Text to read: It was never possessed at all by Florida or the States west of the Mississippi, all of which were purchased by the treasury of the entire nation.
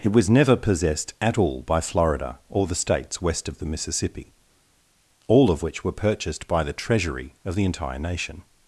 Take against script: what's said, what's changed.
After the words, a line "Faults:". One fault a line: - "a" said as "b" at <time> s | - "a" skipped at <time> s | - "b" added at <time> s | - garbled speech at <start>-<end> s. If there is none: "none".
It was never possessed at all by Florida or the States west of the Mississippi, all of which were purchased by the treasury of the entire nation.
Faults:
none